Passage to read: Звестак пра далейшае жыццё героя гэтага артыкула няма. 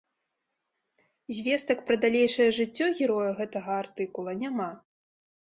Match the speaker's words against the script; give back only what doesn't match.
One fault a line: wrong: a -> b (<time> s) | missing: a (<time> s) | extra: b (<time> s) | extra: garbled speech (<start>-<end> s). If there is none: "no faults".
no faults